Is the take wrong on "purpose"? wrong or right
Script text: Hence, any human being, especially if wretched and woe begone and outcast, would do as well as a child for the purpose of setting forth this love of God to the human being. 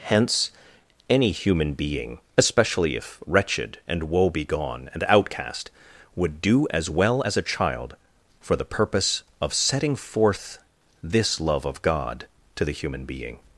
right